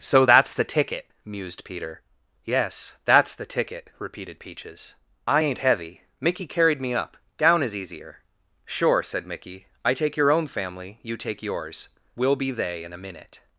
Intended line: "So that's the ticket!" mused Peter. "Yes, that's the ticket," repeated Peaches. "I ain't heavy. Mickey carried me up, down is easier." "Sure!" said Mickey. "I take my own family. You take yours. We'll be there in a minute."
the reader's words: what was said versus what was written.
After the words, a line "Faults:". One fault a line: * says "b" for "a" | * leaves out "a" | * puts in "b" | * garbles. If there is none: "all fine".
"So that's the ticket!" mused Peter. "Yes, that's the ticket," repeated Peaches. "I ain't heavy. Mickey carried me up, down is easier." "Sure!" said Mickey. "I take your own family. You take yours. We'll be they in a minute."
Faults:
* says "your" for "my"
* says "they" for "there"